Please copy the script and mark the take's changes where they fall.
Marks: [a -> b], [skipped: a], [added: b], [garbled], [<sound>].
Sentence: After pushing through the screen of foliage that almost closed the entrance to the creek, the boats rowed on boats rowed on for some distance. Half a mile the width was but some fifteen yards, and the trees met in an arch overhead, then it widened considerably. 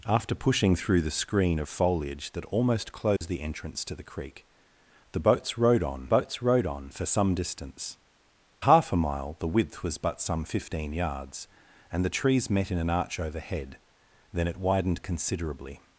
After pushing through the screen of foliage that almost closed [dropout] the entrance to the creek, the boats rowed on boats rowed on for some distance. Half a mile the width was but some fifteen yards, and the trees met in an arch overhead, then it widened considerably.